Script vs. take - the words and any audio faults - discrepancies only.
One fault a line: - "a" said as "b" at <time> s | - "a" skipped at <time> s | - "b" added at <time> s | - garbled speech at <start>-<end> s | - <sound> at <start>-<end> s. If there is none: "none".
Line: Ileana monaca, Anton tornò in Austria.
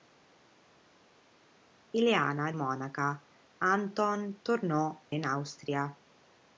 none